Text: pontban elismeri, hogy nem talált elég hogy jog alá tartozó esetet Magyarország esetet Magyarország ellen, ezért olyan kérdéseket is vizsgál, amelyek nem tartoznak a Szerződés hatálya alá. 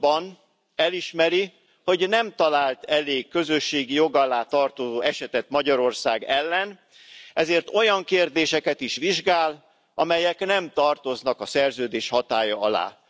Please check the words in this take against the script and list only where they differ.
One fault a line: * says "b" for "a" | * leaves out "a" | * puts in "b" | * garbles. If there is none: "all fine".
* says "közösségi" for "hogy"
* leaves out "esetet Magyarország"